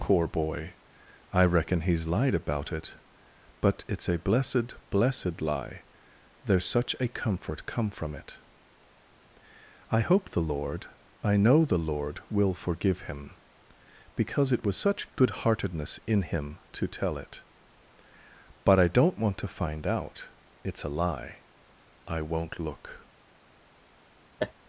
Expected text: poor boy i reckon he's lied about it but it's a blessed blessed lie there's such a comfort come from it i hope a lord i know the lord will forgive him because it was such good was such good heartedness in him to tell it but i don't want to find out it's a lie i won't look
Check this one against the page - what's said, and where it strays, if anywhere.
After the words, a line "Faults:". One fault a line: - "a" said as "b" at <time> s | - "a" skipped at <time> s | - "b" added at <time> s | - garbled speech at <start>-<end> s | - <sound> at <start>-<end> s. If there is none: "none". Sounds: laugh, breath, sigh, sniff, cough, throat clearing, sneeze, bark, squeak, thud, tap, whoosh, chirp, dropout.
poor boy i reckon he's lied about it but it's a blessed blessed lie there's such a comfort come from it i hope the lord i know the lord will forgive him because it was such good heartedness in him to tell it but i don't want to find out it's a lie i won't look
Faults:
- "a" said as "the" at 10.3 s
- "was such good" skipped at 15.4 s
- laugh at 24.4-24.5 s